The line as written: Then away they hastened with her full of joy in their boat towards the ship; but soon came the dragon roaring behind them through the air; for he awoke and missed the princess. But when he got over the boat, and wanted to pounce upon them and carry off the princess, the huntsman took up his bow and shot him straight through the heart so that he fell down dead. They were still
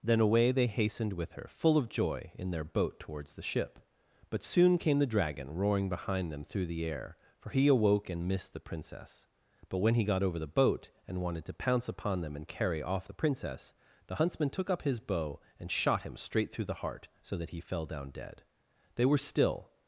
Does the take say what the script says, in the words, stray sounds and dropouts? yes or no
yes